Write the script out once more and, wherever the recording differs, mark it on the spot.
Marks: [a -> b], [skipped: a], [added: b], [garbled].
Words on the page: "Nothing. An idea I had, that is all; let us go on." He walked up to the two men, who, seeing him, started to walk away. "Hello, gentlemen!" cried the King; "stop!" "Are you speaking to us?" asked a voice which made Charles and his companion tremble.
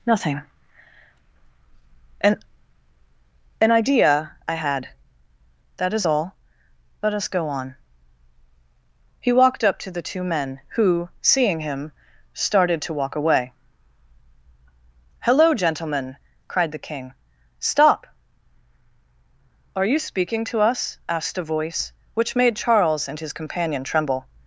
"Nothing. An [added: An] idea I had, that is all; let us go on." He walked up to the two men, who, seeing him, started to walk away. "Hello, gentlemen!" cried the King; "stop!" "Are you speaking to us?" asked a voice which made Charles and his companion tremble.